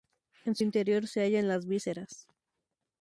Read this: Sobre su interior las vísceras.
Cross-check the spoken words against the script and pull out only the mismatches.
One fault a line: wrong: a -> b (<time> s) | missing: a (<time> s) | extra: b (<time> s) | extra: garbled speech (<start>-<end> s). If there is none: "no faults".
wrong: Sobre -> En (0.5 s)
extra: se hallan (1.1 s)